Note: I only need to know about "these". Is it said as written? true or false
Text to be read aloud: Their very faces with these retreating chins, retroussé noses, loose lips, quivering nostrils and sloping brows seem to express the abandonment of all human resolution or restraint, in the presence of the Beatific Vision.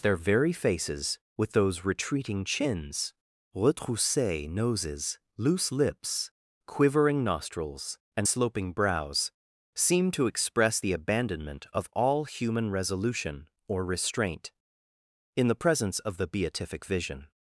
false